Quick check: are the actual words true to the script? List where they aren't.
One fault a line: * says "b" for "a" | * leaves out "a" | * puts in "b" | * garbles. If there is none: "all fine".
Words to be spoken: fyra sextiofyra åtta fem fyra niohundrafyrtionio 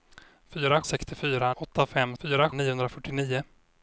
all fine